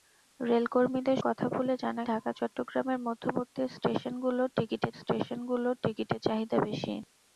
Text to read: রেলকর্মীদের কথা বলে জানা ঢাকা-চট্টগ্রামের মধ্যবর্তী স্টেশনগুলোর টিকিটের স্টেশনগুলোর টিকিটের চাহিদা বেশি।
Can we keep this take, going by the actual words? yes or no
yes